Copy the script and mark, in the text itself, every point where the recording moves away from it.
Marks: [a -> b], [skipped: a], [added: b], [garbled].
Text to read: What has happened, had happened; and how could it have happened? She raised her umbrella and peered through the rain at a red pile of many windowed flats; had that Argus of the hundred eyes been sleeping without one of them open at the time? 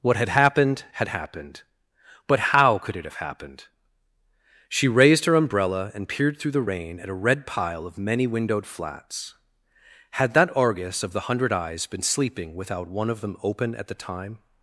What [has -> had] happened, had happened; [and -> but] how could it have happened? She raised her umbrella and peered through the rain at a red pile of many windowed flats; had that Argus of the hundred eyes been sleeping without one of them open at the time?